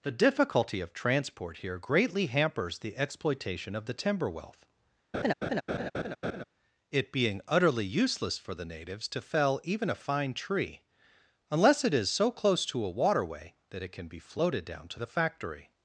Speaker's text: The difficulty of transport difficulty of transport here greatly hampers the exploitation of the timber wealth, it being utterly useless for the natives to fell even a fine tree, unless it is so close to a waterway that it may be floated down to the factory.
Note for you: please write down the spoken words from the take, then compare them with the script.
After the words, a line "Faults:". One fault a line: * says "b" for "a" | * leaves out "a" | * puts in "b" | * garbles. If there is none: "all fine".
The difficulty of transport here greatly hampers the exploitation of the timber wealth, it being utterly useless for the natives to fell even a fine tree, unless it is so close to a waterway that it can be floated down to the factory.
Faults:
* leaves out "difficulty of transport"
* says "can" for "may"